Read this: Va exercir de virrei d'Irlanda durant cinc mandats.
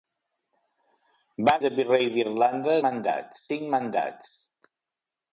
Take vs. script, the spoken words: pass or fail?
fail